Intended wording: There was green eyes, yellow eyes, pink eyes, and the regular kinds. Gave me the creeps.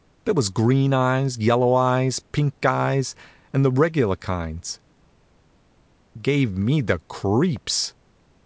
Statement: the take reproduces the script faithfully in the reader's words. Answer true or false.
true